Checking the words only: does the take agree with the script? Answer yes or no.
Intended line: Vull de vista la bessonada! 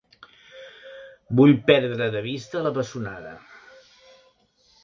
no